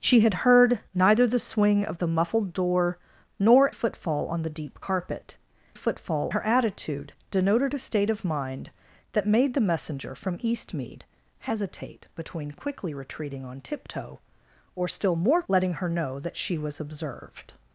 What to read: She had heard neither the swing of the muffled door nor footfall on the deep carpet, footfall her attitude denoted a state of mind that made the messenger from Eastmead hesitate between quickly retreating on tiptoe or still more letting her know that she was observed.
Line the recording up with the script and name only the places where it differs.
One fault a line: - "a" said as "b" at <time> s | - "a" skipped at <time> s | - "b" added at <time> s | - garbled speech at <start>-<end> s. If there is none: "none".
none